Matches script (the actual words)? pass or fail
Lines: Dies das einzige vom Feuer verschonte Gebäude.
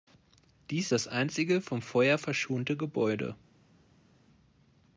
pass